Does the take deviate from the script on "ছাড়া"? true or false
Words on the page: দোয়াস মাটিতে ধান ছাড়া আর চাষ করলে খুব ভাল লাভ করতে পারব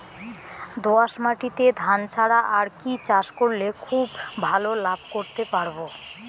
false